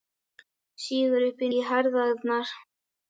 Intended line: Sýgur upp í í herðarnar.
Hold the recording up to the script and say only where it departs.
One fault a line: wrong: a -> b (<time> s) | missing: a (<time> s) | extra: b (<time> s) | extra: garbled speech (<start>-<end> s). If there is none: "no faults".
no faults